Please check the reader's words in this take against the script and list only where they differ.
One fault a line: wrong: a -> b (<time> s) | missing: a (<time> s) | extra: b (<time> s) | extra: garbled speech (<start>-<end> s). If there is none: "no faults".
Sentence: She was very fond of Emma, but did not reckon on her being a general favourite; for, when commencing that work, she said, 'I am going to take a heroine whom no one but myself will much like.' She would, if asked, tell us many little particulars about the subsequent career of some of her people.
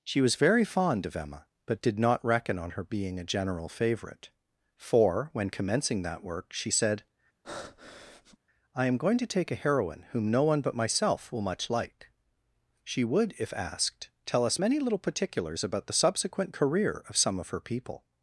no faults